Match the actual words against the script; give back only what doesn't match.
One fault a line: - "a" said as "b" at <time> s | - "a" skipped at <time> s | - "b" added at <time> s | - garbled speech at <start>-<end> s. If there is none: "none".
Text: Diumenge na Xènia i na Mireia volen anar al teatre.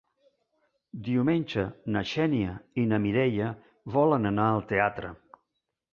none